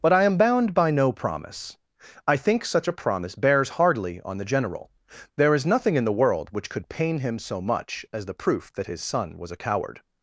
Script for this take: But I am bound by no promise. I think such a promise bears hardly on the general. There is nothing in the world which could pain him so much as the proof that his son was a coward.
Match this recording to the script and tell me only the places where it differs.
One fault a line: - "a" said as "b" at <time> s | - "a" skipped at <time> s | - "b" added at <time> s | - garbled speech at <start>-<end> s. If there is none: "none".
none